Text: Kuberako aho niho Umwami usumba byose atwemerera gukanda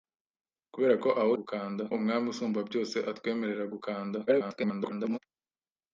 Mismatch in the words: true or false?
true